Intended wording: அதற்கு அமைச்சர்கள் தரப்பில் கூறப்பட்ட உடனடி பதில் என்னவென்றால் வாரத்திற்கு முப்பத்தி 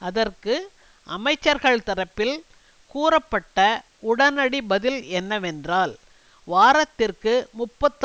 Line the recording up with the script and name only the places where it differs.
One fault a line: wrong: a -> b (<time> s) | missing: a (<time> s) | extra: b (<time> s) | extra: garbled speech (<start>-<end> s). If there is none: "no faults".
no faults